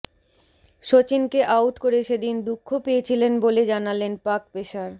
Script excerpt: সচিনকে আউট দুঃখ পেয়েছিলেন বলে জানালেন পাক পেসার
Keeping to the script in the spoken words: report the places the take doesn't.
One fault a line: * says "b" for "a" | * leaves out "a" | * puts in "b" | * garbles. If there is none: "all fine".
* puts in "করে সেদিন"